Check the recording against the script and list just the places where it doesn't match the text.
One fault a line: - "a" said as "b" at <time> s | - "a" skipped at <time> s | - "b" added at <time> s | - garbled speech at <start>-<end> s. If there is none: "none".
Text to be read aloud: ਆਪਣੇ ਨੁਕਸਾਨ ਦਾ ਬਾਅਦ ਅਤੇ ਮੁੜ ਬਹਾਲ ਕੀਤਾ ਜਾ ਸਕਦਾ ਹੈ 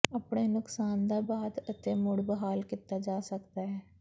none